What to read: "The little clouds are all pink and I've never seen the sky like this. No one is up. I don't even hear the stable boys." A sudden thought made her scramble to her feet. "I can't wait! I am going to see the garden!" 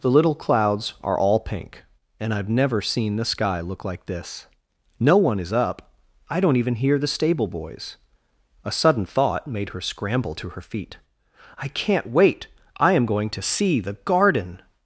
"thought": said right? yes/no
yes